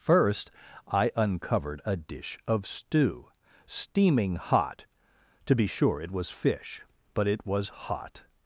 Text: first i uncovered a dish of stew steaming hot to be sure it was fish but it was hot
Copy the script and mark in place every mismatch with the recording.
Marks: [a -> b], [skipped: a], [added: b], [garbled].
first i uncovered a dish of stew steaming hot to be sure it was fish but it was hot